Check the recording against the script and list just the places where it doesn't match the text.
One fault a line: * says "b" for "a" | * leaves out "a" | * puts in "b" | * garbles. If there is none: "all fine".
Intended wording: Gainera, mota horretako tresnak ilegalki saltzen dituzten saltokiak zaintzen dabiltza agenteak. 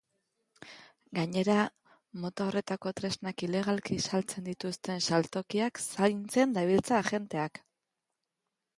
all fine